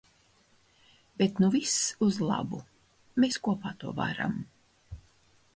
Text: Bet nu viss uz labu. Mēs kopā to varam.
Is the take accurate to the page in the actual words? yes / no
yes